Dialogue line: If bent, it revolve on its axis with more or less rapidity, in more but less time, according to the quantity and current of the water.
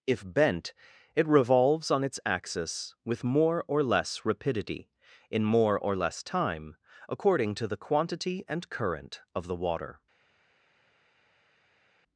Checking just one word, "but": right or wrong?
wrong